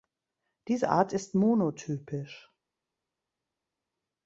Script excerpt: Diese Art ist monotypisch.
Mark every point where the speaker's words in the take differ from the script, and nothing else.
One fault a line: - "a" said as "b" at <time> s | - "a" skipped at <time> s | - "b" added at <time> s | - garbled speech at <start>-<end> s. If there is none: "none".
none